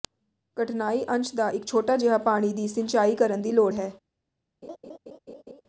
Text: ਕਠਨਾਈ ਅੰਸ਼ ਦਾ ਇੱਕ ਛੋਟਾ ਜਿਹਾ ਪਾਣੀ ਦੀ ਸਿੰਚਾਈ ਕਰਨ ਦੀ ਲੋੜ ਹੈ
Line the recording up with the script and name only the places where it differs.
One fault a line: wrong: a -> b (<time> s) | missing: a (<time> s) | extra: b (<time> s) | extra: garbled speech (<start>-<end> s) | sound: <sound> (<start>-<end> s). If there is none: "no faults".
sound: laugh (4.6-5.6 s)